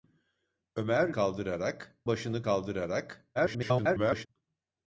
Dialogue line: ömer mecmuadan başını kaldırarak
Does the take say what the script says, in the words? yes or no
no